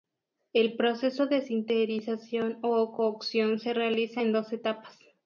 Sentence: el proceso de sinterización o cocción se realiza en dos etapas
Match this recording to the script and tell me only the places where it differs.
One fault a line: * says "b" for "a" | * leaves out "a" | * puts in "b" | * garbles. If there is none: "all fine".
all fine